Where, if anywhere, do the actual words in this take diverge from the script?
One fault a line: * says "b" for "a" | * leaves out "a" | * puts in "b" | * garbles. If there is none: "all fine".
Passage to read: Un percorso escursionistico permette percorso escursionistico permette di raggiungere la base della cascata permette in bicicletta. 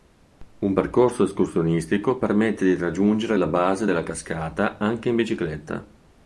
* leaves out "percorso escursionistico permette"
* says "anche" for "permette"